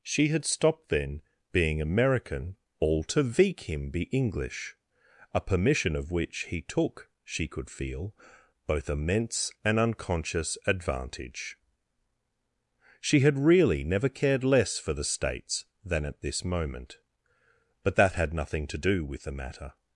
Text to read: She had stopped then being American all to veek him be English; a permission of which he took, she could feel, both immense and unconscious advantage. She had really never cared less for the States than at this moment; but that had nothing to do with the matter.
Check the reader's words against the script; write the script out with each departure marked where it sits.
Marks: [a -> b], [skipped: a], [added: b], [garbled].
She had stopped then being American all to veek him be English; a permission of which he took, she could feel, both immense and unconscious advantage. She had really never cared less for the States than at this moment; but that had nothing to do with the matter.